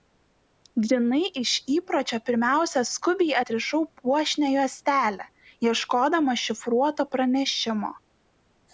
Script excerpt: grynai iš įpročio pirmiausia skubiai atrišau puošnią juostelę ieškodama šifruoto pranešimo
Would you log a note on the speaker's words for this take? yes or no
no